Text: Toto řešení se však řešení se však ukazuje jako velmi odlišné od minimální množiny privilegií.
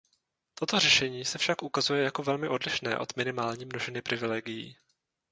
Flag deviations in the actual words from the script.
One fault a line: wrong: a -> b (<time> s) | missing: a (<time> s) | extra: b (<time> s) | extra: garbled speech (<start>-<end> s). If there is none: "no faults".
missing: řešení se však (1.6 s)